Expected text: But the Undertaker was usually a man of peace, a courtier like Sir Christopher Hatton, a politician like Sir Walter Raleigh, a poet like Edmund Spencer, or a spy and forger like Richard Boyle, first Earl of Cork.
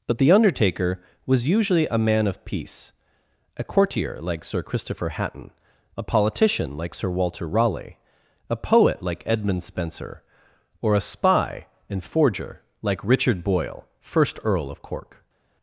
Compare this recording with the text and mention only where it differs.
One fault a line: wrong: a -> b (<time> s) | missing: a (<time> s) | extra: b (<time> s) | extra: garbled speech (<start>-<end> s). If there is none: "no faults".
no faults